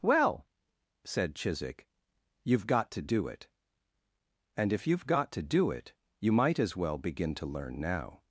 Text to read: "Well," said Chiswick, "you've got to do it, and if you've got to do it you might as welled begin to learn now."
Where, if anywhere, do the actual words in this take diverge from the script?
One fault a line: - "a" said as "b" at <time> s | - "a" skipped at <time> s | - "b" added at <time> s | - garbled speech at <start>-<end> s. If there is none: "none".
- "welled" said as "well" at 6.8 s